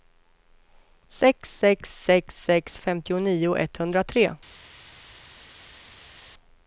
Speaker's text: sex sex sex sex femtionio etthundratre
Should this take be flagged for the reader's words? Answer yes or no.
no